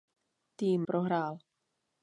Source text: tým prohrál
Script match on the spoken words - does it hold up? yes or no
yes